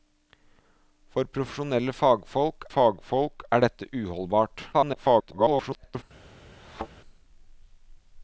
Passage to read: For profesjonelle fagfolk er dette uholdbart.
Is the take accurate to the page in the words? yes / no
no